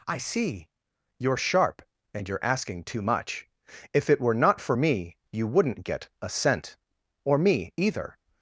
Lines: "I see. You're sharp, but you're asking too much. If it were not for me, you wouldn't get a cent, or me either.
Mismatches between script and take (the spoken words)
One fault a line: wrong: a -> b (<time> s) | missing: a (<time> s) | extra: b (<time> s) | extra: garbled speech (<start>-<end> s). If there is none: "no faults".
wrong: but -> and (2.1 s)